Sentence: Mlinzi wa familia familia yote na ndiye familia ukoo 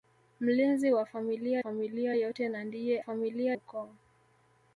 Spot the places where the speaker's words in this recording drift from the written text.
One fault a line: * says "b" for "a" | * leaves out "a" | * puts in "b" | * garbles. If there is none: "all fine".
all fine